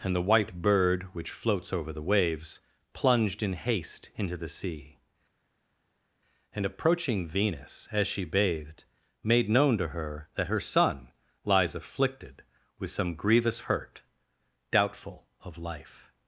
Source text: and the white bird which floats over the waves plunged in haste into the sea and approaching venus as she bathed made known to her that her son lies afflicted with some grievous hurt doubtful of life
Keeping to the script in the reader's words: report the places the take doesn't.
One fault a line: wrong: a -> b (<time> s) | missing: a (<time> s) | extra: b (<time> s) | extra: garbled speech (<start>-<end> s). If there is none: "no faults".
no faults